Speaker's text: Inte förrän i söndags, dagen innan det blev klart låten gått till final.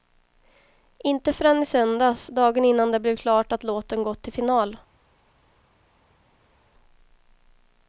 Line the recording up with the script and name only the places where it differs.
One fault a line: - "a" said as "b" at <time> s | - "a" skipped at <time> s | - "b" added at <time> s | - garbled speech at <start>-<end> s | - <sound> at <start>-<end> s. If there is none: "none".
- "att" added at 3.5 s